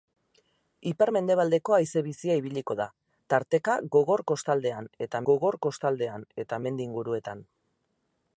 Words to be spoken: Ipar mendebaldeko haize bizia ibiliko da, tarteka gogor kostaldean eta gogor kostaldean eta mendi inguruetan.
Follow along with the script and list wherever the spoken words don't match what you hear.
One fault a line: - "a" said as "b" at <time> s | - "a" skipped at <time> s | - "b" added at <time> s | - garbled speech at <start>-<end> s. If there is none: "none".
none